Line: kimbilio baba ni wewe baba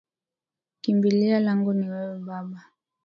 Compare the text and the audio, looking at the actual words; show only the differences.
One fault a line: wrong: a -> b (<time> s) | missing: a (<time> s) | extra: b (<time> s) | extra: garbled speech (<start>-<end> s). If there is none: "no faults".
wrong: baba -> langu (1.4 s)